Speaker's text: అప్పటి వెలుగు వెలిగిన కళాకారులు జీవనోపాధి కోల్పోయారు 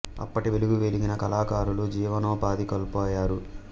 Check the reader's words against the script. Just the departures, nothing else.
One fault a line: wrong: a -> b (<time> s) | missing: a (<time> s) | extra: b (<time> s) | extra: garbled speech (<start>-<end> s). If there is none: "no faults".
no faults